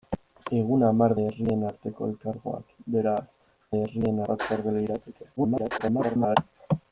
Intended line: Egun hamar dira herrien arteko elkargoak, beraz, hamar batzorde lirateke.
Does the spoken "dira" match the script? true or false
false